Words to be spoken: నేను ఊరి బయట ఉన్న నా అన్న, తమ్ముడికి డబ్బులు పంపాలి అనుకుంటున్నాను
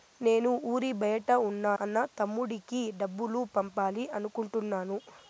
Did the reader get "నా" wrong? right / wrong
wrong